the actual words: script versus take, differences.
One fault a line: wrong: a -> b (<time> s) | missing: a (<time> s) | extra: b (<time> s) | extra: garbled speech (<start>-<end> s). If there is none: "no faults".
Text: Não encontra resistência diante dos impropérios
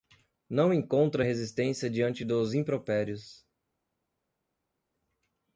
no faults